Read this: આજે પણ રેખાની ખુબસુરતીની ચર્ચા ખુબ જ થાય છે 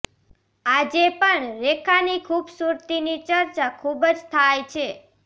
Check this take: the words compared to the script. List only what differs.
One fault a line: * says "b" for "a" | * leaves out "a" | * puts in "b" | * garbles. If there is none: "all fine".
all fine